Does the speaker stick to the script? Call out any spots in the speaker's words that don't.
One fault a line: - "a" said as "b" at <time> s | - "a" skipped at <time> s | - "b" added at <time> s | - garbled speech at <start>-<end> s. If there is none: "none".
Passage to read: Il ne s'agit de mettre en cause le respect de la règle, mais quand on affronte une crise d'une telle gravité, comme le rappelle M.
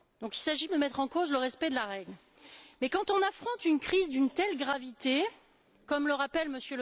none